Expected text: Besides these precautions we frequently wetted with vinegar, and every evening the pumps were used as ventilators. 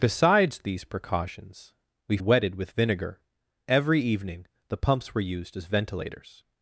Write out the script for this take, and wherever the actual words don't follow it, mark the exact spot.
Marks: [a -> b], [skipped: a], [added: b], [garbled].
Besides these precautions we [skipped: frequently] wetted with vinegar, [skipped: and] every evening the pumps were used as ventilators.